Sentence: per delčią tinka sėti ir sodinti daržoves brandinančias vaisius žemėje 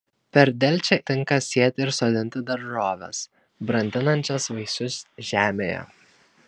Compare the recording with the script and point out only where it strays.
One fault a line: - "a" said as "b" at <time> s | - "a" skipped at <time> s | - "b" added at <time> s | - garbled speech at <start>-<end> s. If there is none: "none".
none